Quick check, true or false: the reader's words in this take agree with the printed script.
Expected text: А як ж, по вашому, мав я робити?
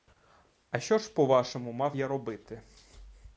false